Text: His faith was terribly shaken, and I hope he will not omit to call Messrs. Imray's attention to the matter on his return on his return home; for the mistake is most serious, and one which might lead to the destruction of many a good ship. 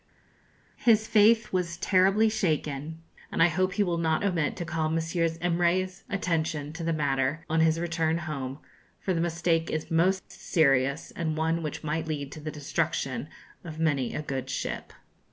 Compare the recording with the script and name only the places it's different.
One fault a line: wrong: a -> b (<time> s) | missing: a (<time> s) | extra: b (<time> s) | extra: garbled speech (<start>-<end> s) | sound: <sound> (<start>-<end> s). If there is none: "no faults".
missing: on his return (8.2 s)